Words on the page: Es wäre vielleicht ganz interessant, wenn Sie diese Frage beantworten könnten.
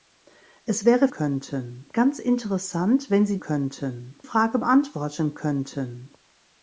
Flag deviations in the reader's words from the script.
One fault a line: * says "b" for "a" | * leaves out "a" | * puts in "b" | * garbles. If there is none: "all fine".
* says "könnten" for "vielleicht"
* says "könnten" for "diese"